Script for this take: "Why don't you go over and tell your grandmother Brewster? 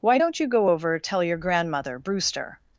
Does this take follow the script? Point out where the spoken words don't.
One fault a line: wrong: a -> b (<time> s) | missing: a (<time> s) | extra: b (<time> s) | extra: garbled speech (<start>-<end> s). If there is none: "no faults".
missing: and (1.0 s)